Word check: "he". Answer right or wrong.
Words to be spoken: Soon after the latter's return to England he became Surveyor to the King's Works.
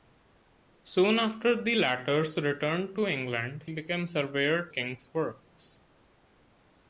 wrong